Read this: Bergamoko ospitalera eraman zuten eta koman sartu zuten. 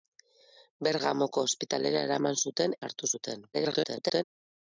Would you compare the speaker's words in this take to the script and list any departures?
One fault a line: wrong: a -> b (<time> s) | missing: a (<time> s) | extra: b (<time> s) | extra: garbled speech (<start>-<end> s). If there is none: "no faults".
missing: eta koman (2.8 s)
extra: garbled speech (3.5-4.2 s)